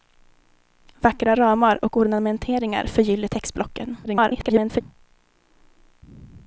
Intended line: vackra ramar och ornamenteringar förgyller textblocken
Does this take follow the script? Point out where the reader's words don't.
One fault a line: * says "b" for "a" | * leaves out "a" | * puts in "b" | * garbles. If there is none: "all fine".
* garbles